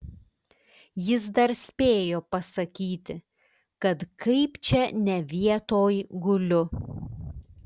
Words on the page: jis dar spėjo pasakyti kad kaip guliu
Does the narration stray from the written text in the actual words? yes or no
yes